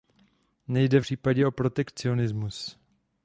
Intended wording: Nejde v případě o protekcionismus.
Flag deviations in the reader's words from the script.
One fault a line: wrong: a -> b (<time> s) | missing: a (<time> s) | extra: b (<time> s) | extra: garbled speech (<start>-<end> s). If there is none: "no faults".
no faults